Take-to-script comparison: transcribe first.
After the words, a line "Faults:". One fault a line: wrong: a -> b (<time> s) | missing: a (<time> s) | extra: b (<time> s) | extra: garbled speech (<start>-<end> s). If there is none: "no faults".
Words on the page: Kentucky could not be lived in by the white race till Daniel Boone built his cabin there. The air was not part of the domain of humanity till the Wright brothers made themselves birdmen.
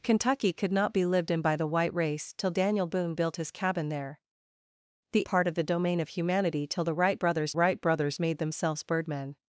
Kentucky could not be lived in by the white race till Daniel Boone built his cabin there. The part of the domain of humanity till the Wright brothers Wright brothers made themselves birdmen.
Faults:
missing: air was not (5.3 s)
extra: Wright brothers (7.5 s)